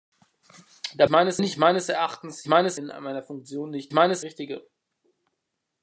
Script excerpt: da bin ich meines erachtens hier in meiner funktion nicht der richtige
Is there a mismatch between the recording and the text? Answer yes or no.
yes